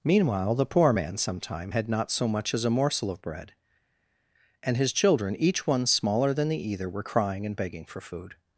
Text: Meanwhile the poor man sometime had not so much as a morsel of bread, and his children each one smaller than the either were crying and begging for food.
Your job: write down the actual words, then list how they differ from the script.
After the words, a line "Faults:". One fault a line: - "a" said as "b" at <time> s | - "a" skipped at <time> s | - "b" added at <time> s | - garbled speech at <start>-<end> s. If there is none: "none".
Meanwhile the poor man sometime had not so much as a morsel of bread, and his children each one smaller than the either were crying and begging for food.
Faults:
none